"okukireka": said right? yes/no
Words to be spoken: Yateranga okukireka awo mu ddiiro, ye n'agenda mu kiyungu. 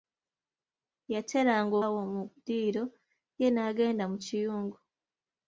no